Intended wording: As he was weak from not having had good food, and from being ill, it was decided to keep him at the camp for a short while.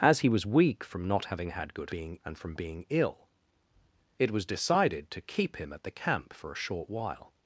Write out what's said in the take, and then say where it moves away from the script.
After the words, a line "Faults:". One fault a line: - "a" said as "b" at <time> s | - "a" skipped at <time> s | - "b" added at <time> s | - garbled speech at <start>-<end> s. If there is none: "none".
As he was weak from not having had good being, and from being ill, it was decided to keep him at the camp for a short while.
Faults:
- "food" said as "being" at 1.9 s